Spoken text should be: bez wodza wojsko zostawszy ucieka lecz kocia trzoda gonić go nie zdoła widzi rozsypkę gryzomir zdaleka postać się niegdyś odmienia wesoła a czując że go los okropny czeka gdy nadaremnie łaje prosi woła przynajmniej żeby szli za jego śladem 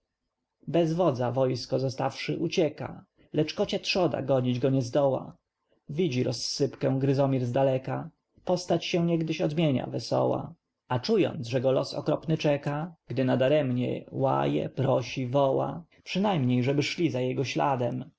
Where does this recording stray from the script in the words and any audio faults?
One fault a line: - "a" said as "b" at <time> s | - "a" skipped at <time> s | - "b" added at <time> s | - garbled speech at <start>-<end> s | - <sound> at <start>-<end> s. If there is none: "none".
none